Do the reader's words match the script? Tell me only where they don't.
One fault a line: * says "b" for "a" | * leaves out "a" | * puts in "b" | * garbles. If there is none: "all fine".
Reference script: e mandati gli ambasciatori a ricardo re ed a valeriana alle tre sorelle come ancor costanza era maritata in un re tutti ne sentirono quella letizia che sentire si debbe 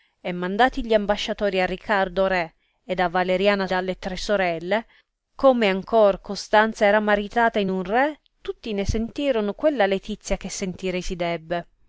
all fine